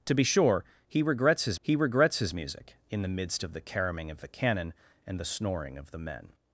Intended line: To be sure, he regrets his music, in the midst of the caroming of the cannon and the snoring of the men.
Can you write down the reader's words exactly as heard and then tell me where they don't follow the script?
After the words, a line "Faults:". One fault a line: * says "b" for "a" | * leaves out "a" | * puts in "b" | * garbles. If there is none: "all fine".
To be sure, he regrets his he regrets his music, in the midst of the caroming of the cannon and the snoring of the men.
Faults:
* puts in "he regrets his"